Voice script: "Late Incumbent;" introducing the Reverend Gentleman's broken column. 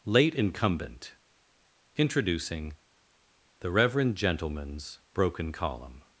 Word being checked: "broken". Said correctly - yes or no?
yes